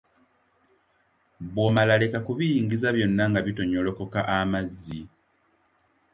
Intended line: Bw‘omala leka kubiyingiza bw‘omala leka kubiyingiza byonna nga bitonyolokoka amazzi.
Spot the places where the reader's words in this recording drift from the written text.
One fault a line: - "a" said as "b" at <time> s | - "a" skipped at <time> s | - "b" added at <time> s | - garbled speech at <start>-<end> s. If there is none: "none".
- "bw‘omala leka kubiyingiza" skipped at 2.9 s